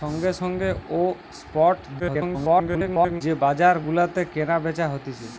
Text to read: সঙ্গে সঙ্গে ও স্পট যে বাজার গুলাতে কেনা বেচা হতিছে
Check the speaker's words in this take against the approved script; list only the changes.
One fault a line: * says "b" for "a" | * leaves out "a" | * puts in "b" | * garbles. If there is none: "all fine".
* garbles